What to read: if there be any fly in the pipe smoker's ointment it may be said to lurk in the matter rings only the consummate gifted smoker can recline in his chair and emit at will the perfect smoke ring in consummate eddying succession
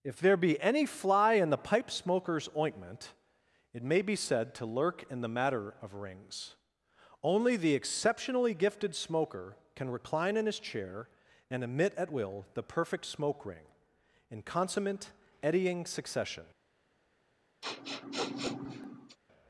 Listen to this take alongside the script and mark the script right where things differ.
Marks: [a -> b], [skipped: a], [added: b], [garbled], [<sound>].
if there be any fly in the pipe smoker's ointment it may be said to lurk in the matter [added: of] rings only the [consummate -> exceptionally] gifted smoker can recline in his chair and emit at will the perfect smoke ring in consummate eddying succession [sniff]